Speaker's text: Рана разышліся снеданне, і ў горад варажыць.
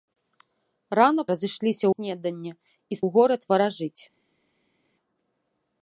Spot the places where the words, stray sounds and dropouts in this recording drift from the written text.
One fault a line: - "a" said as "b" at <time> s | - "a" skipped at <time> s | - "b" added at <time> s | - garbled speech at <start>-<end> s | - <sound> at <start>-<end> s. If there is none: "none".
none